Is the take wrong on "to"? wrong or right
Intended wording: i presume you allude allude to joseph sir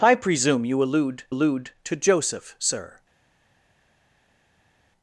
right